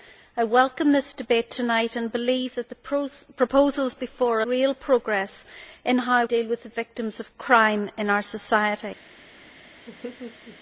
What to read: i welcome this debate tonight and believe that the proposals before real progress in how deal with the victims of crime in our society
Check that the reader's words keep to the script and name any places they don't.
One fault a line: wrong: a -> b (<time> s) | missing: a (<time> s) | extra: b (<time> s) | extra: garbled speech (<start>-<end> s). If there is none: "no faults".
no faults